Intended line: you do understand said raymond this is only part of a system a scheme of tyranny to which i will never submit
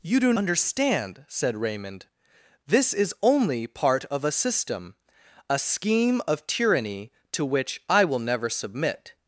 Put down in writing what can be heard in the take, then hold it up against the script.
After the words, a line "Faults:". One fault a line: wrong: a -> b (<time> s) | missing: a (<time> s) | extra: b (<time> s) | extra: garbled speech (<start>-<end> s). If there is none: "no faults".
you do understand said raymond this is only part of a system a scheme of tyranny to which i will never submit
Faults:
no faults